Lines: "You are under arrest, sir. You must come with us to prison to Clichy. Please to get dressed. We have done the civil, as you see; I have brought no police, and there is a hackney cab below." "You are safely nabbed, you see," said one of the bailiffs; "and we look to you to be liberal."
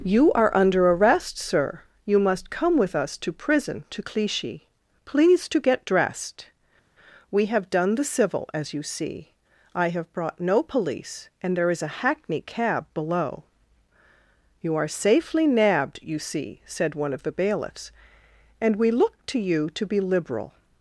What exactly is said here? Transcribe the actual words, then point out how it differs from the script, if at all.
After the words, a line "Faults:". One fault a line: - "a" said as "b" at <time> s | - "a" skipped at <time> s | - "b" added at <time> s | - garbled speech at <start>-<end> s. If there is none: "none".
"You are under arrest, sir. You must come with us to prison to Clichy. Please to get dressed. We have done the civil, as you see; I have brought no police, and there is a hackney cab below." "You are safely nabbed, you see," said one of the bailiffs; "and we look to you to be liberal."
Faults:
none